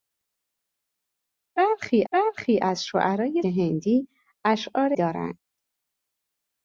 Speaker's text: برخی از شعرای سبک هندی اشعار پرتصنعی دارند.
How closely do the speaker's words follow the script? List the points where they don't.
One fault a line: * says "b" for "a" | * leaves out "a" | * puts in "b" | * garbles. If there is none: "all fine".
* puts in "برخی"
* leaves out "سبک"
* leaves out "پرتصنعی"